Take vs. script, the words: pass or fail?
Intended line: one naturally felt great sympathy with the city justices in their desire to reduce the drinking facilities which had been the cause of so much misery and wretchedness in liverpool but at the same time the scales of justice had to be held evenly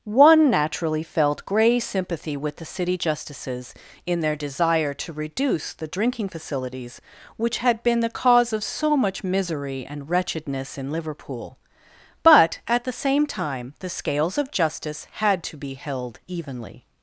fail